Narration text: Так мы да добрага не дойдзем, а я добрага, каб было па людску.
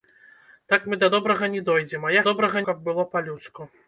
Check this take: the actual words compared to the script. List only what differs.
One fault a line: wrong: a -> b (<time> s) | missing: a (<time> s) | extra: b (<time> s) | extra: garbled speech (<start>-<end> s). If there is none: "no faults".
no faults